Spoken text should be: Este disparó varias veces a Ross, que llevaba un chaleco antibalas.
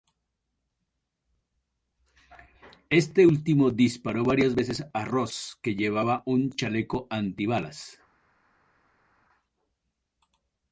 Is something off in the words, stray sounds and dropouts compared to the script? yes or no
yes